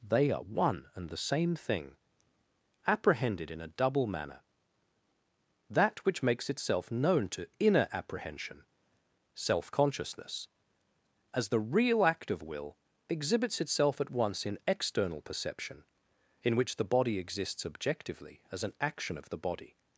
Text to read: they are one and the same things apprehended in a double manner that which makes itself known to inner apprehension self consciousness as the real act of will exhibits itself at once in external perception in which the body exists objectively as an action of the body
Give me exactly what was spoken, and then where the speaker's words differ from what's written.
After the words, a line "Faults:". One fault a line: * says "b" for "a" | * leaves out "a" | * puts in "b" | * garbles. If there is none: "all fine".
they are one and the same thing apprehended in a double manner that which makes itself known to inner apprehension self consciousness as the real act of will exhibits itself at once in external perception in which the body exists objectively as an action of the body
Faults:
* says "thing" for "things"